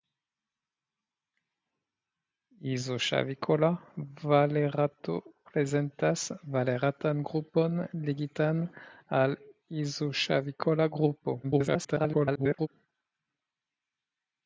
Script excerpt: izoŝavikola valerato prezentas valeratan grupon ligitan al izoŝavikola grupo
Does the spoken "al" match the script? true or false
true